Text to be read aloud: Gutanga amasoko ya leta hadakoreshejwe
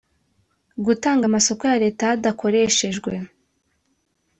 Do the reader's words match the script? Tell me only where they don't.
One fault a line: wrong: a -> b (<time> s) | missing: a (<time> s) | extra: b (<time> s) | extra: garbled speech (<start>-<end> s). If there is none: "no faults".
no faults